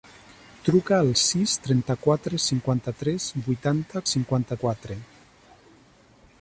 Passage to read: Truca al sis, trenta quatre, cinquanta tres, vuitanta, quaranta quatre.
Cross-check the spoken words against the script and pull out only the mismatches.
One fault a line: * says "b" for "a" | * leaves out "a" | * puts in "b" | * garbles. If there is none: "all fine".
* says "cinquanta" for "quaranta"